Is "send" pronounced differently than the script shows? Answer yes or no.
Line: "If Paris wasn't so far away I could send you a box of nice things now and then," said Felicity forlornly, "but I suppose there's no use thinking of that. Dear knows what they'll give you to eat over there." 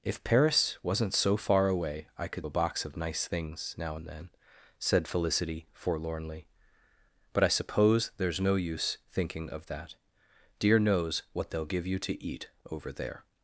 yes